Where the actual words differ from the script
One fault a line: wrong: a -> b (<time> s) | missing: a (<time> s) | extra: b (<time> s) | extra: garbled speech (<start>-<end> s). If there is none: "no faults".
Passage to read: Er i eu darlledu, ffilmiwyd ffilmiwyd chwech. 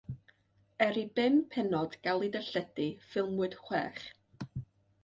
extra: bum pennod gael (1.2 s)
missing: ffilmiwyd (3.6 s)